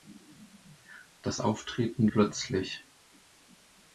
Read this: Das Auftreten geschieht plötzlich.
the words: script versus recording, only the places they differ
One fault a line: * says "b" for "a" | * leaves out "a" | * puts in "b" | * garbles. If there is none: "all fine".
* leaves out "geschieht"